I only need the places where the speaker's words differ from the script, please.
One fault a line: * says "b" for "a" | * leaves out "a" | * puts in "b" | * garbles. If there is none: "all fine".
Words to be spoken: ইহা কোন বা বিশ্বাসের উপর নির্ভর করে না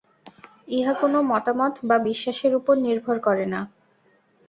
* puts in "মতামত"